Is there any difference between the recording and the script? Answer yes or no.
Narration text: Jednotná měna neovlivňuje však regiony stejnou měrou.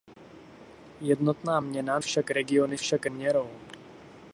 yes